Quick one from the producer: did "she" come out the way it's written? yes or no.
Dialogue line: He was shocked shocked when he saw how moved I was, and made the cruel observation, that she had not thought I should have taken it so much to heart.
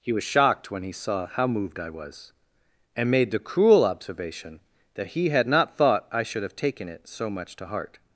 no